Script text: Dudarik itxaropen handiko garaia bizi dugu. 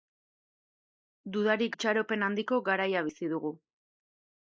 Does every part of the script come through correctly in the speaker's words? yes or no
yes